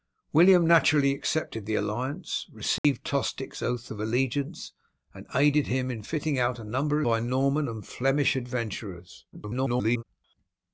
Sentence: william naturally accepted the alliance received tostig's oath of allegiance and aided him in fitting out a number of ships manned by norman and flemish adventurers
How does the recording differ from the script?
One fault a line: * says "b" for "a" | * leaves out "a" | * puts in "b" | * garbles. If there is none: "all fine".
* leaves out "of ships manned"
* garbles